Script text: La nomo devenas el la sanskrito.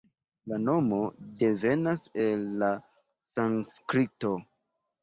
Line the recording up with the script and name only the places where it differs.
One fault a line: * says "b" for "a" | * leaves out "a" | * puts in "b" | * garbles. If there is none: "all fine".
all fine